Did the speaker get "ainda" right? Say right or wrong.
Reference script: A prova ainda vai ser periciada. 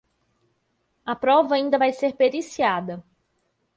right